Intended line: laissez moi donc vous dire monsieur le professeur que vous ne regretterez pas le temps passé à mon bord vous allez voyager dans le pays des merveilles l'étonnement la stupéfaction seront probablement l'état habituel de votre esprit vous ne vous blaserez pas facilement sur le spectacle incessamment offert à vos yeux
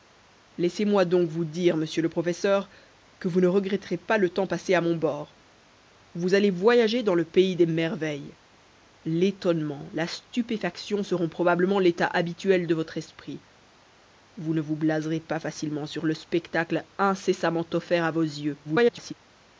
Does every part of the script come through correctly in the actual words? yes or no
no